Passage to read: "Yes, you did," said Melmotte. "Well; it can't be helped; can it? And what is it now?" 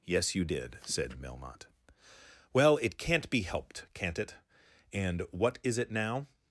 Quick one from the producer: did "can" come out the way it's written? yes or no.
no